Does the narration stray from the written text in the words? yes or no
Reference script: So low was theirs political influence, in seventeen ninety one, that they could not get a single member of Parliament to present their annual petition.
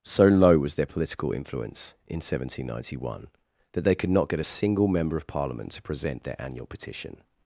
yes